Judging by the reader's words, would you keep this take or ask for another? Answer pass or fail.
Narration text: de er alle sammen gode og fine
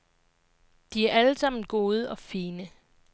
pass